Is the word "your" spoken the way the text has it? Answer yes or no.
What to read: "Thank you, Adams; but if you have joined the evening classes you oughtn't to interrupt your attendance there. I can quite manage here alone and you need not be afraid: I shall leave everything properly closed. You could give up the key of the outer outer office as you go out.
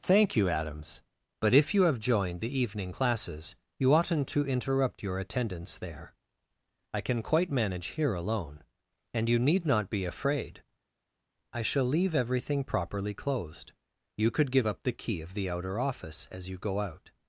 yes